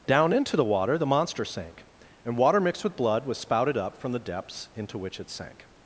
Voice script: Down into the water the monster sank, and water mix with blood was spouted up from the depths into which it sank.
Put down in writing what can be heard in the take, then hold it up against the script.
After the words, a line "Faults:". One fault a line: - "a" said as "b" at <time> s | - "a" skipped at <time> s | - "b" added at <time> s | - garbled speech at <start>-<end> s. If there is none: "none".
Down into the water the monster sank, and water mixed with blood was spouted up from the depths into which it sank.
Faults:
- "mix" said as "mixed" at 2.6 s